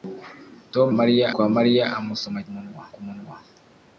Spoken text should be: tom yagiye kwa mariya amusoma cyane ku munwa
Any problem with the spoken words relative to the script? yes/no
yes